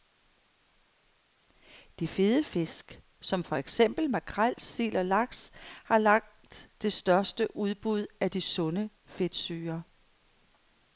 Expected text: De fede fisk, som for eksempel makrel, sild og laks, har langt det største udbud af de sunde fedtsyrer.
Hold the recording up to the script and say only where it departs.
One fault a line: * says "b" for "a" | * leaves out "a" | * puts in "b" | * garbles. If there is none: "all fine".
all fine